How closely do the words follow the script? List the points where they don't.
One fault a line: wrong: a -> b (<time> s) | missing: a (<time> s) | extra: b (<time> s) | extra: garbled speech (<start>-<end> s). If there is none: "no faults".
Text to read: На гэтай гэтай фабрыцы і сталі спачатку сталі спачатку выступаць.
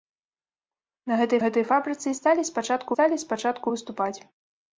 no faults